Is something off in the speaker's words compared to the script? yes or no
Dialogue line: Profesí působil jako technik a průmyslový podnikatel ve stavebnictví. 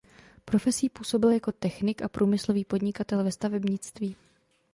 no